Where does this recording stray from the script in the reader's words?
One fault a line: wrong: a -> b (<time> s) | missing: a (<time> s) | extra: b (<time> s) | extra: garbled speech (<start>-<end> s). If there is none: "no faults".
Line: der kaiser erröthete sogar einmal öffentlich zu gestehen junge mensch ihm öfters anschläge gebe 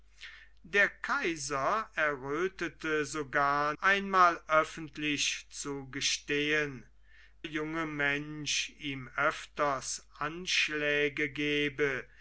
no faults